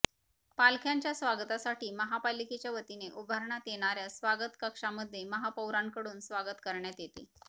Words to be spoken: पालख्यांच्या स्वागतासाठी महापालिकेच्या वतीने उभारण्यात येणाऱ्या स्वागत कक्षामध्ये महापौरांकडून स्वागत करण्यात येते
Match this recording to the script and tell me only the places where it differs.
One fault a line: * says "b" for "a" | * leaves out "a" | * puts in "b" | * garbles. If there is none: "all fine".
all fine